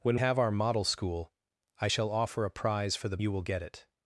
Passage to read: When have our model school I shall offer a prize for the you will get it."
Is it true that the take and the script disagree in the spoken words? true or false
false